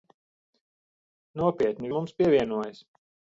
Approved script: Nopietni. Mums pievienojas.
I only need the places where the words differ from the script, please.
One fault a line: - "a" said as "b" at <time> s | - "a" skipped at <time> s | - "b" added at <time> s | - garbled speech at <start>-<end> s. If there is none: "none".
none